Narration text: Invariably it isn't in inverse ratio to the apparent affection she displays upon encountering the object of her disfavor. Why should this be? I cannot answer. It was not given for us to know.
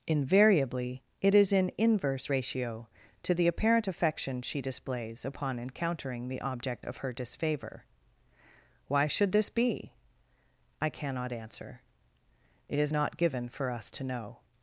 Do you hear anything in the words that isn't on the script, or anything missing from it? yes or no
yes